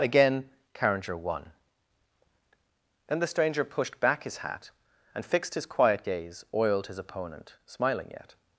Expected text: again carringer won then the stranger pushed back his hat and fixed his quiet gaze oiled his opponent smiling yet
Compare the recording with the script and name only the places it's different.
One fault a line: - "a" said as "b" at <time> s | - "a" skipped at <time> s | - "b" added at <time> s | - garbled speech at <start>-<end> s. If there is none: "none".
none